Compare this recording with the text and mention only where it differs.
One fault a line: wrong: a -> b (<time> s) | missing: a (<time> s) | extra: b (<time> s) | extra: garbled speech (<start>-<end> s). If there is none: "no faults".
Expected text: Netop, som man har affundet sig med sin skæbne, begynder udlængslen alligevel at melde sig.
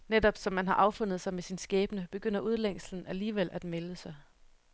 no faults